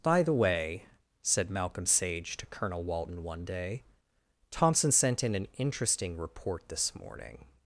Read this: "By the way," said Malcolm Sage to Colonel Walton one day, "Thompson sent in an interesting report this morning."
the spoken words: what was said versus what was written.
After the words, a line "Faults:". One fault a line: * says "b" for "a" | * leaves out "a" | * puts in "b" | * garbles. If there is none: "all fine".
"By the way," said Malcolm Sage to Colonel Walton one day, "Thompson sent in an interesting report this morning."
Faults:
all fine